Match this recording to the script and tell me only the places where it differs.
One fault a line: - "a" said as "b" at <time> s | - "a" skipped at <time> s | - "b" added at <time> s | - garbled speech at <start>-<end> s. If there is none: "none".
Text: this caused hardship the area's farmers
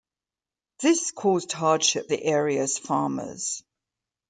none